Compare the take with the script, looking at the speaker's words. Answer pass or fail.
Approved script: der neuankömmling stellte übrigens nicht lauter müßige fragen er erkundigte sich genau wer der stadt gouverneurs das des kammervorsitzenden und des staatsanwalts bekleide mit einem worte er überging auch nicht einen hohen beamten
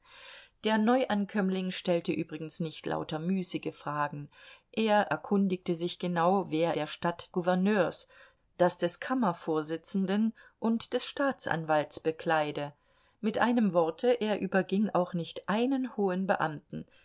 pass